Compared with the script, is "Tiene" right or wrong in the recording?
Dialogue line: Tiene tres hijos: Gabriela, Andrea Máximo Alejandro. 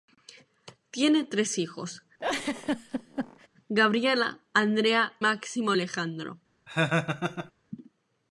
right